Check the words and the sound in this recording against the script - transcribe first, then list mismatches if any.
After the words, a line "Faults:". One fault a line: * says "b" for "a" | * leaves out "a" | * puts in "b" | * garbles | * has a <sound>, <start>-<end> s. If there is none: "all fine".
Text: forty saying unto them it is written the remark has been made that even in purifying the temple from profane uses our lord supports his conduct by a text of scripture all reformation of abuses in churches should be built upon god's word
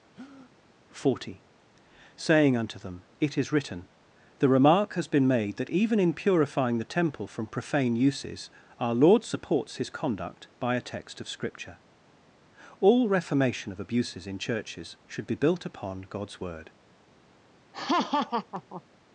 forty saying unto them it is written the remark has been made that even in purifying the temple from profane uses our lord supports his conduct by a text of scripture all reformation of abuses in churches should be built upon god's word
Faults:
* has a breath, 0.1-0.5 s
* has a laugh, 17.7-18.8 s